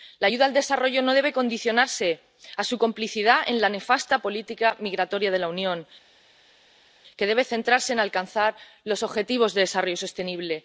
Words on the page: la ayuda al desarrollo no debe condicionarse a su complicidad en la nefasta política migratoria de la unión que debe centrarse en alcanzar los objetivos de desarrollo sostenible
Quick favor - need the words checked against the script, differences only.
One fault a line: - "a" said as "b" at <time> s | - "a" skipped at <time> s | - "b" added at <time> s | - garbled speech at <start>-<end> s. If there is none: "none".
none